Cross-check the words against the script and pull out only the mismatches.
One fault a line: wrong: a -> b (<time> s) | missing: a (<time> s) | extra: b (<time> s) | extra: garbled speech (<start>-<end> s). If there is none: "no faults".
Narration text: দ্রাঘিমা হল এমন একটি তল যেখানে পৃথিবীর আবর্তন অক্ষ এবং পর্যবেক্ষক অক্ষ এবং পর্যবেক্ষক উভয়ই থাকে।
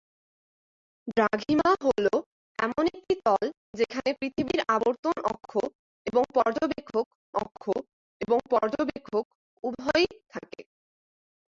no faults